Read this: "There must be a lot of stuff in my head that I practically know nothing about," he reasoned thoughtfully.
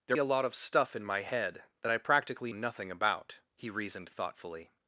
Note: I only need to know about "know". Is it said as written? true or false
false